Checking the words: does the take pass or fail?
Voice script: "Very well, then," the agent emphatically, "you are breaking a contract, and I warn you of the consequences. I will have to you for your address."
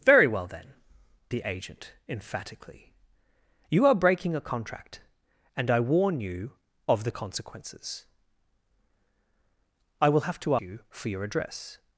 pass